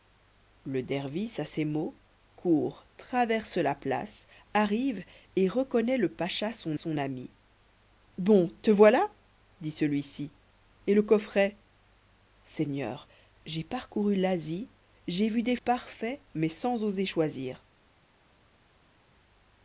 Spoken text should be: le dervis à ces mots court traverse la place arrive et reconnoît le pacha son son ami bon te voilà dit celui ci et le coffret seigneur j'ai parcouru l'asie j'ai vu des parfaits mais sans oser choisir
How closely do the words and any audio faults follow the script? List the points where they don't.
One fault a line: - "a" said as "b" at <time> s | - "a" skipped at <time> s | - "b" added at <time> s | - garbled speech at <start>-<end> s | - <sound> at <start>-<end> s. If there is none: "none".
none